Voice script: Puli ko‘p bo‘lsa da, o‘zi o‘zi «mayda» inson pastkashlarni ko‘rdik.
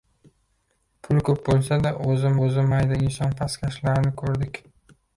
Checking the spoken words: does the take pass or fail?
pass